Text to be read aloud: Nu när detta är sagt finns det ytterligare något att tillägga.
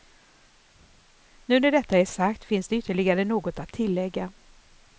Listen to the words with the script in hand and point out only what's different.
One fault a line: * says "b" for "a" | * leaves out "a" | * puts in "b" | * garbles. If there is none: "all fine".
all fine